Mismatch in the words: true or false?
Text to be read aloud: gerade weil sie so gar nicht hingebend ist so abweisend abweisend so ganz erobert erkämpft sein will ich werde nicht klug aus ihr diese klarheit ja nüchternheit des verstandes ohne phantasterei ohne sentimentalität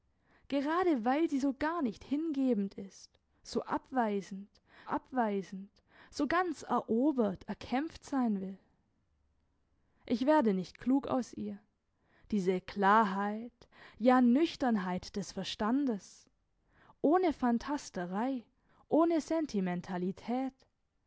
false